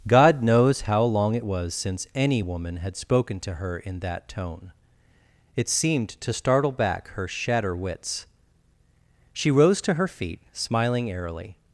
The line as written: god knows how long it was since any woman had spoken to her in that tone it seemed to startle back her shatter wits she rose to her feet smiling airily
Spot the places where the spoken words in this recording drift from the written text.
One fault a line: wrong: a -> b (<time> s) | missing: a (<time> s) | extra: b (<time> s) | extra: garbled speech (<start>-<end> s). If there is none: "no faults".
no faults